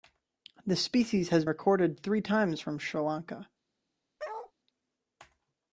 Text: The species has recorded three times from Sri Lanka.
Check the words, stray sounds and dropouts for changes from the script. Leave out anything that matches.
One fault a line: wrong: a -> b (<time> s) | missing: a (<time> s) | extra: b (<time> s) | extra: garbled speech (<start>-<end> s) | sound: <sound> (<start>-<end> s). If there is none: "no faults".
sound: bark (4.2-4.5 s)